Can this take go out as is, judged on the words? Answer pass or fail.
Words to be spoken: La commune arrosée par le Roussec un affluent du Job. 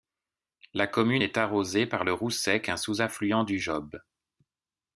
fail